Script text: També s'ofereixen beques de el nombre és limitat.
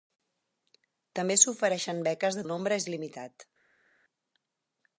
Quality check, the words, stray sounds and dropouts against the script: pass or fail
pass